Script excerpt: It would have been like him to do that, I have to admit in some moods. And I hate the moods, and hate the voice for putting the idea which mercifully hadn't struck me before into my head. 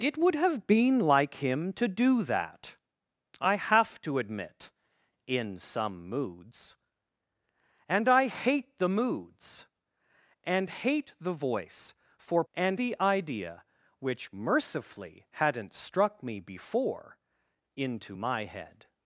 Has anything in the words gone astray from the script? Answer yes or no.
yes